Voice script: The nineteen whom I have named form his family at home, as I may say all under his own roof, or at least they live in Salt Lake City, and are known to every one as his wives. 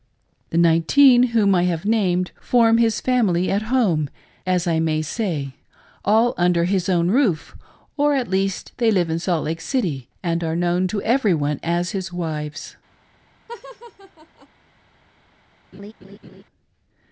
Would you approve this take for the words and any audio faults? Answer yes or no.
no